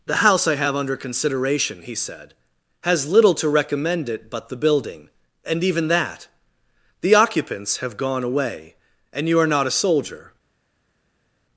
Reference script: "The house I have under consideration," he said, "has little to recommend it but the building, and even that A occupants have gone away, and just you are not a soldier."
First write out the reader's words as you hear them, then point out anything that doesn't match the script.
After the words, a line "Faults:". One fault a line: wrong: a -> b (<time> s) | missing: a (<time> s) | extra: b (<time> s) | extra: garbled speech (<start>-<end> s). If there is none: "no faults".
"The house I have under consideration," he said, "has little to recommend it but the building, and even that The occupants have gone away, and you are not a soldier."
Faults:
wrong: A -> The (7.0 s)
missing: just (9.3 s)